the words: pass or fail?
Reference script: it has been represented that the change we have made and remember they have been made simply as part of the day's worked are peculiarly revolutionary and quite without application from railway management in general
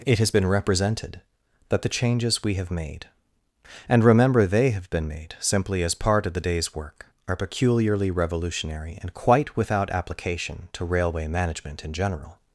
fail